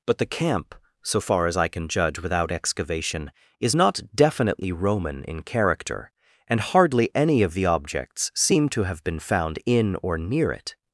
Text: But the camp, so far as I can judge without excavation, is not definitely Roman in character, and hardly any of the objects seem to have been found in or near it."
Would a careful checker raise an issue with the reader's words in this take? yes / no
no